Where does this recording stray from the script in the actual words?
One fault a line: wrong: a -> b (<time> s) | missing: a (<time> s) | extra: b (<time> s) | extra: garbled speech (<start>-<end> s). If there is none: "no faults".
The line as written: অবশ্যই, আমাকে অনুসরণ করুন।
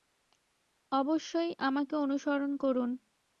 no faults